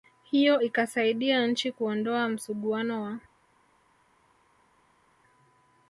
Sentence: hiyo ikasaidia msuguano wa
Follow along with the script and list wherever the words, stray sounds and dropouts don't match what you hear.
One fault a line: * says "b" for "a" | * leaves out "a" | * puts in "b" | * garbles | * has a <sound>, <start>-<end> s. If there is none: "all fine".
* puts in "nchi kuondoa"